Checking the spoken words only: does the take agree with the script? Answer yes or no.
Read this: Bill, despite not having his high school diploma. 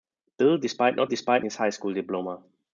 no